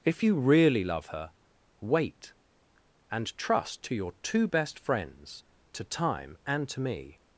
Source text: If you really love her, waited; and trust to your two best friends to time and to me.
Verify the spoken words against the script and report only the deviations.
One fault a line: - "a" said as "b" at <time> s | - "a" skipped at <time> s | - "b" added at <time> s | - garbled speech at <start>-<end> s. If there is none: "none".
- "waited" said as "wait" at 1.8 s